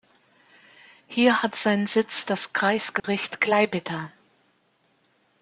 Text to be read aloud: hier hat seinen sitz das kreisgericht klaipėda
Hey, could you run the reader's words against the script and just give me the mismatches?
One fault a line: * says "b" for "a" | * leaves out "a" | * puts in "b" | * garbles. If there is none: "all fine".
all fine